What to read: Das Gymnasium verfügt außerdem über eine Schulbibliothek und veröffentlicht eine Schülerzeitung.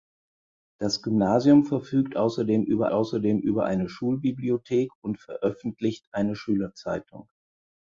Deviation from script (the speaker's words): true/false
true